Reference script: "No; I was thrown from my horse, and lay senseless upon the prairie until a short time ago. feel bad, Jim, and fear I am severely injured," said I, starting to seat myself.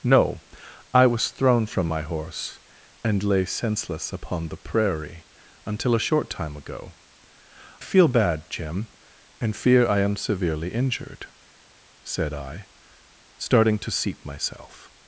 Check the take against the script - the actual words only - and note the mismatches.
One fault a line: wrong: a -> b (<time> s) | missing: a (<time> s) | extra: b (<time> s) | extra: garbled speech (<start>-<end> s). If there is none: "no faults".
no faults